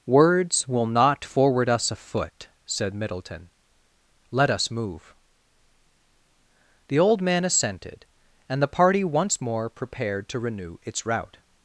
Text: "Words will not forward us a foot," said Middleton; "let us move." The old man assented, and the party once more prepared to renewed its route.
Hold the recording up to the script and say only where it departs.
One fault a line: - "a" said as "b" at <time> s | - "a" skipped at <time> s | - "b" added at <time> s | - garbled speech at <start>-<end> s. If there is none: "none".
- "renewed" said as "renew" at 10.4 s